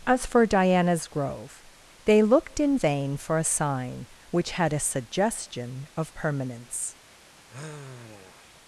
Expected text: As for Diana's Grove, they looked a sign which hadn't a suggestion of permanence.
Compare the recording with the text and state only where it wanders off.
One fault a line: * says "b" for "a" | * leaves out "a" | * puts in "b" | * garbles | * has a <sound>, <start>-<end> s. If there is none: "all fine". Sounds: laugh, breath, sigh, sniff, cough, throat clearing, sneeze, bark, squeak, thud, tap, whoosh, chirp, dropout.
* puts in "in vain for"
* says "had" for "hadn't"
* has a sigh, 7.5-8.6 s